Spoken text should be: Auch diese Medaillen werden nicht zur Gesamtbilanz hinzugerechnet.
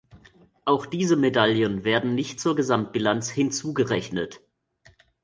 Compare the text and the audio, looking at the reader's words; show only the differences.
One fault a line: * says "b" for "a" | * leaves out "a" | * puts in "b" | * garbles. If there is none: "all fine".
all fine